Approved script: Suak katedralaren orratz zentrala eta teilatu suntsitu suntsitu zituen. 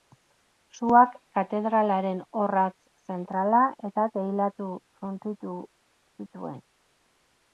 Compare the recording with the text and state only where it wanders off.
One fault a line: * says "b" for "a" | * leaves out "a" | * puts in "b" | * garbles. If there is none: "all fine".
* leaves out "suntsitu"